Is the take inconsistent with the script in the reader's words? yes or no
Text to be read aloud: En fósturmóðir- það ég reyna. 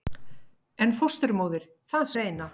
no